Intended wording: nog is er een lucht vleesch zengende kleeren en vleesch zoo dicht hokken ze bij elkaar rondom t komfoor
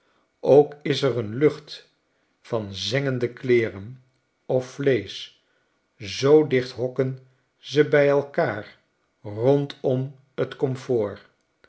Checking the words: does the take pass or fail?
fail